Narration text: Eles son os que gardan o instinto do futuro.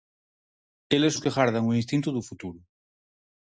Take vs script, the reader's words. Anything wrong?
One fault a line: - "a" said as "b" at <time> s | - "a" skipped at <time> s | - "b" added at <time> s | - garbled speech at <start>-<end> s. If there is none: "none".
- "son" skipped at 1.1 s